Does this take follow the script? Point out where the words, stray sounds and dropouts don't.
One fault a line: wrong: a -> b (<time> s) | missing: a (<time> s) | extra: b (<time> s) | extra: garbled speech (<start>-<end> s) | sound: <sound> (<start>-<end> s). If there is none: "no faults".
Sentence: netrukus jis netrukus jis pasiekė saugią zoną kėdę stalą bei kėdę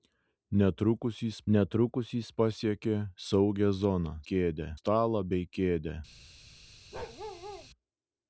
sound: bark (6.9-7.7 s)